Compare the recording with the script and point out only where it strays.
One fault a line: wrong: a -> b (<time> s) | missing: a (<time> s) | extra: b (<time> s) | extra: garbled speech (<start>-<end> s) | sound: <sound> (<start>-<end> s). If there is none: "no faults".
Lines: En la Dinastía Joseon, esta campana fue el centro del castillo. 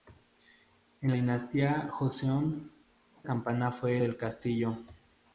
missing: la (1.1 s)
missing: esta (2.7 s)
missing: el centro (4.0 s)